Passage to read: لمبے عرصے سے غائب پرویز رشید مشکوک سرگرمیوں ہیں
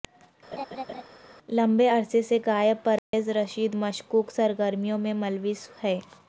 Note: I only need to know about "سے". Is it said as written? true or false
true